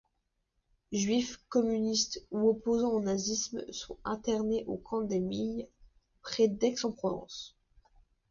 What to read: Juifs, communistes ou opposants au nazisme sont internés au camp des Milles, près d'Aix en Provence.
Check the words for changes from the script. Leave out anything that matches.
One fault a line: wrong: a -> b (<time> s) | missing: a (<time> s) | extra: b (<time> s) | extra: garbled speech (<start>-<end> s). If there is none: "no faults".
no faults